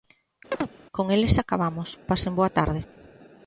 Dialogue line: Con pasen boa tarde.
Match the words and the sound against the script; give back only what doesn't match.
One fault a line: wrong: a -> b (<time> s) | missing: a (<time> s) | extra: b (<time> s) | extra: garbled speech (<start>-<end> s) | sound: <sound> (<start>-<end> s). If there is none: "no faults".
sound: chirp (0.5-0.7 s)
extra: eles acabamos (1.1 s)